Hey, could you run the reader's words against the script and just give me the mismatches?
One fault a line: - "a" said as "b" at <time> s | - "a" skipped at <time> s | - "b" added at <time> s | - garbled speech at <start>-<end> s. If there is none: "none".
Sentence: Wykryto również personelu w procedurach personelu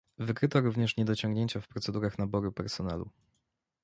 - "personelu" said as "niedociągnięcia" at 1.0 s
- "naboru" added at 2.2 s